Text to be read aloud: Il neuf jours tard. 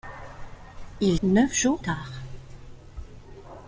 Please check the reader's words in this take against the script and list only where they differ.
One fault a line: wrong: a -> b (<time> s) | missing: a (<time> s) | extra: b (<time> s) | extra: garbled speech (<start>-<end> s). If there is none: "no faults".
no faults